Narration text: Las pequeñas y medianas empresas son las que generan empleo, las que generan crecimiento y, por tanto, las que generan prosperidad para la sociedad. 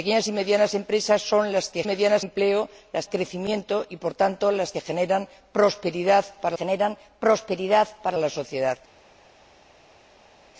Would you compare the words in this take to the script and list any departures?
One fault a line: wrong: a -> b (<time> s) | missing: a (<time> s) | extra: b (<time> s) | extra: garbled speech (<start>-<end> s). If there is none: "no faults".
wrong: generan -> medianas (1.8 s)
missing: que generan (3.1 s)
extra: generan prosperidad para (6.5 s)